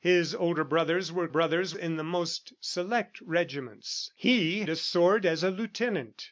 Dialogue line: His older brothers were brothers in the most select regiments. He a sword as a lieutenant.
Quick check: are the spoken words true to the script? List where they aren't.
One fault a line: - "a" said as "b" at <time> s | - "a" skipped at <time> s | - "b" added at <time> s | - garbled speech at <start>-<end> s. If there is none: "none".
none